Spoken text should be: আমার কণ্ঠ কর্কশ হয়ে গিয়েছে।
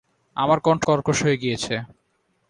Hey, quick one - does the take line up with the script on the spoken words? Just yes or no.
yes